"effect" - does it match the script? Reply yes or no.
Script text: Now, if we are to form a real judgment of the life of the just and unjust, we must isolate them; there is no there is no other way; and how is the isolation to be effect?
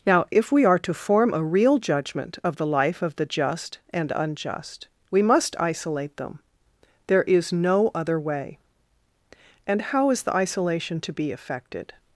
no